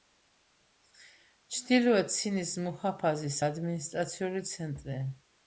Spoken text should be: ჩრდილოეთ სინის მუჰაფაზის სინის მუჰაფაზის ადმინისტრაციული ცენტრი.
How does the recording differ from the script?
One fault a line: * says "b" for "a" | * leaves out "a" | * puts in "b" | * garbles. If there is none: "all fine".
* leaves out "სინის მუჰაფაზის"